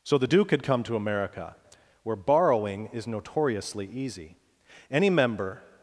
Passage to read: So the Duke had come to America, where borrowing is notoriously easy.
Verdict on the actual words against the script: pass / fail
fail